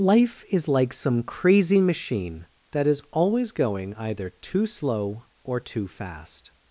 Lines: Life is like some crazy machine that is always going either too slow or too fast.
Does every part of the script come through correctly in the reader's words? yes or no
yes